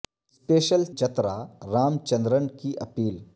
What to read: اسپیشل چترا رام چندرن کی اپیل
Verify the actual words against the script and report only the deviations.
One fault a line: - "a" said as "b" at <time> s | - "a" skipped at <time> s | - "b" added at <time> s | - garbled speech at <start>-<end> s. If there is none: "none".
none